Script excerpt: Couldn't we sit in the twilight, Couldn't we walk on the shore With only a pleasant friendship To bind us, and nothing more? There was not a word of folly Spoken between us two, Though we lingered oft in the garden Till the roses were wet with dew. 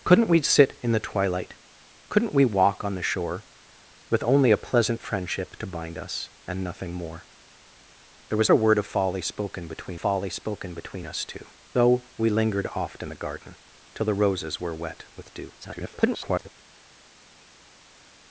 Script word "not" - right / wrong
wrong